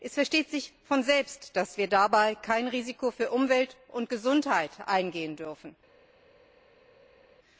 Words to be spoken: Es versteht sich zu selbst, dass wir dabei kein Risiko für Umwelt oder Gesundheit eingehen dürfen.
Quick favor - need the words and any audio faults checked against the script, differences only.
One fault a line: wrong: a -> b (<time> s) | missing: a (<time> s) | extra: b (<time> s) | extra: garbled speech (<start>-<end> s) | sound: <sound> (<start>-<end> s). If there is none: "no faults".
wrong: zu -> von (0.8 s)
wrong: oder -> und (3.9 s)